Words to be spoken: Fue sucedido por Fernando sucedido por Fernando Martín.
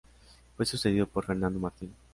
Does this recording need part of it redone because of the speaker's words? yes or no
yes